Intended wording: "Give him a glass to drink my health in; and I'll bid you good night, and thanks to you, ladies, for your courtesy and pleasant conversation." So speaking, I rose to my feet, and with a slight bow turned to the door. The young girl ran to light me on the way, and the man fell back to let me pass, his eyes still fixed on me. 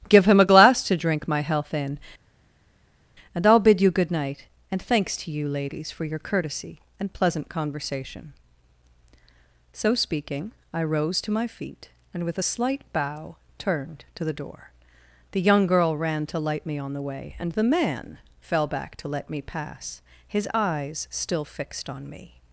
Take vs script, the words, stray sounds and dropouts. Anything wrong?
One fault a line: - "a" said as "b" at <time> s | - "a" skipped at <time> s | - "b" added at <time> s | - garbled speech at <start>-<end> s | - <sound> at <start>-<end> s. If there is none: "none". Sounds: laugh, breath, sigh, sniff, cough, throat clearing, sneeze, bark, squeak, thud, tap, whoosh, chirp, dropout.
none